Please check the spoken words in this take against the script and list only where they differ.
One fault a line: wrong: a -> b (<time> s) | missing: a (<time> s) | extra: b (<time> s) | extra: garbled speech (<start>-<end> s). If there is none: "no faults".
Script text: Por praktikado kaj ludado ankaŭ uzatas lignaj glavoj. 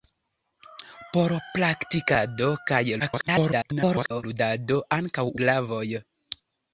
extra: garbled speech (3.0-4.2 s)
missing: uzatas lignaj (5.3 s)